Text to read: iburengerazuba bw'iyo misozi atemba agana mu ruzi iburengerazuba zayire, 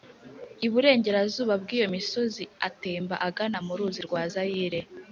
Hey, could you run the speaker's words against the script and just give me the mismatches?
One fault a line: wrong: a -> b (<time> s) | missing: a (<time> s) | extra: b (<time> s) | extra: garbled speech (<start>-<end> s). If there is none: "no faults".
wrong: iburengerazuba -> rwa (4.1 s)